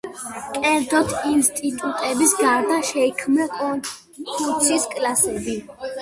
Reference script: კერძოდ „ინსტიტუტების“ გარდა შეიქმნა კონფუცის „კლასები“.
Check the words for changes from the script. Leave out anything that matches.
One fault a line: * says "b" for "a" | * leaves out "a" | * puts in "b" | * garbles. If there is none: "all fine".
all fine